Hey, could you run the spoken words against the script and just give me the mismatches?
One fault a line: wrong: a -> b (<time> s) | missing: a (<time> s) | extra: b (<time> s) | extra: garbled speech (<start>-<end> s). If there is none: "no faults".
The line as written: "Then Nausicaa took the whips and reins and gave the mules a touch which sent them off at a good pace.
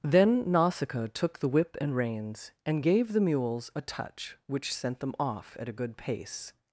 wrong: whips -> whip (1.5 s)